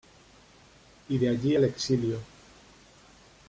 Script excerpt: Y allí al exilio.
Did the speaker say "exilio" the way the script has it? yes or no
yes